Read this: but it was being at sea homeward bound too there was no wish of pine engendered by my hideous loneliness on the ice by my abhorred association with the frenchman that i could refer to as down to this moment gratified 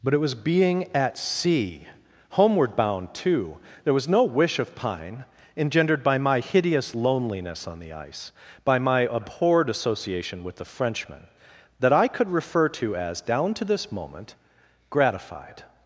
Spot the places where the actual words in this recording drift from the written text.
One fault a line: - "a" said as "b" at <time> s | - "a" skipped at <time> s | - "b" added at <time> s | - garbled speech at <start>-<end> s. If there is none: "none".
none